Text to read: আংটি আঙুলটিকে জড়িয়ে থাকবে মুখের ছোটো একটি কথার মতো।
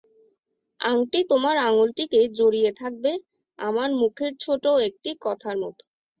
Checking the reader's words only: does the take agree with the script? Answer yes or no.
no